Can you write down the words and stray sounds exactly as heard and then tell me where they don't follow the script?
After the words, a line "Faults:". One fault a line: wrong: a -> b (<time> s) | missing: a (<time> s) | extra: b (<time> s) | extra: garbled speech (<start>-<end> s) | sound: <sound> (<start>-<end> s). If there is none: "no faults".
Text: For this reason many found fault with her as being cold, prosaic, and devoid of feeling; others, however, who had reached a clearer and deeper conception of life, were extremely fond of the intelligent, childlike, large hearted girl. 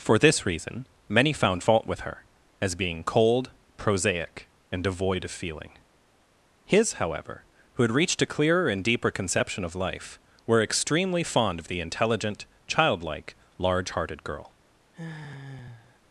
For this reason many found fault with her as being cold, prosaic, and devoid of feeling; his, however, who had reached a clearer and deeper conception of life, were extremely fond of the intelligent, childlike, large hearted girl.
Faults:
wrong: others -> his (6.7 s)
sound: sigh (14.9-16.0 s)